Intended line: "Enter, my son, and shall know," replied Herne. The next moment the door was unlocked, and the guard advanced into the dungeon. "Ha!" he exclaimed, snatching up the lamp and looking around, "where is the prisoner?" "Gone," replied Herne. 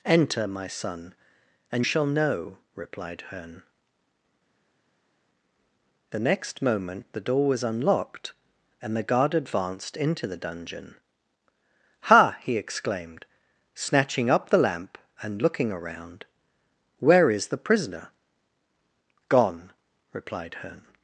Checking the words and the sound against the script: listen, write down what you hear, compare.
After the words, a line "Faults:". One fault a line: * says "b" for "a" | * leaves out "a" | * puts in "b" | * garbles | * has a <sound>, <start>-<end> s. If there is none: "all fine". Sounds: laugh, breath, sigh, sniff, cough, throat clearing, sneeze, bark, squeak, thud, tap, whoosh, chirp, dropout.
"Enter, my son, and shall know," replied Herne. The next moment the door was unlocked, and the guard advanced into the dungeon. "Ha!" he exclaimed, snatching up the lamp and looking around, "where is the prisoner?" "Gone," replied Herne.
Faults:
all fine